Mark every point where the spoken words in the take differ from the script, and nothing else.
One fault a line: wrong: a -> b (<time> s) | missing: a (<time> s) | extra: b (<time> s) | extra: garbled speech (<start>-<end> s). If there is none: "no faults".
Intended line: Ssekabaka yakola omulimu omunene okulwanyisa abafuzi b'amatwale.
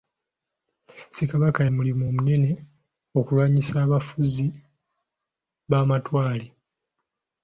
missing: yakola (1.6 s)